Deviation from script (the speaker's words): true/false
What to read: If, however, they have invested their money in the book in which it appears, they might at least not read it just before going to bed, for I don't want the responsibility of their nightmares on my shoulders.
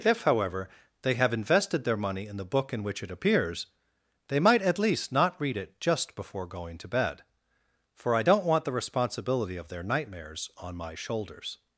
false